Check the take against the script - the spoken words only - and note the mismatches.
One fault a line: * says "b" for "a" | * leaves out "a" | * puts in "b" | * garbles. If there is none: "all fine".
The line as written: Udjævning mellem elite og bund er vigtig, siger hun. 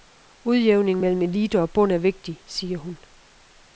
all fine